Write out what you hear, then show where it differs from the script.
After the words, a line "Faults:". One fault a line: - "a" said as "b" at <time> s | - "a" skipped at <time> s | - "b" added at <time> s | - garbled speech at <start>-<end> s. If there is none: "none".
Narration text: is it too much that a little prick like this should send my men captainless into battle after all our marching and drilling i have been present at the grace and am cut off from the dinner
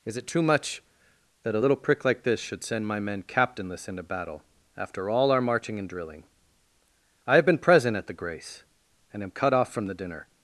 is it too much that a little prick like this should send my men captainless into battle after all our marching and drilling i have been present at the grace and am cut off from the dinner
Faults:
none